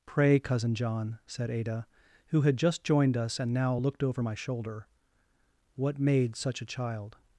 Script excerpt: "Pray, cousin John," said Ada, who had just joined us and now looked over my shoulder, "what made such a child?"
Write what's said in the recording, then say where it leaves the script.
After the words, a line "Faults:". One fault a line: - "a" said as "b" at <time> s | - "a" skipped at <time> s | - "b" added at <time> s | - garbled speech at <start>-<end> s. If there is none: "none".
"Pray, cousin John," said Ada, who had just joined us and now looked over my shoulder, "what made such a child?"
Faults:
none